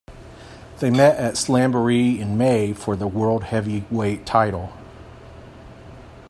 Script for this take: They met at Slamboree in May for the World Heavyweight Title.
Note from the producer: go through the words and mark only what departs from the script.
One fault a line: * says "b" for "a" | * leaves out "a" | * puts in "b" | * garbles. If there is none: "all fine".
all fine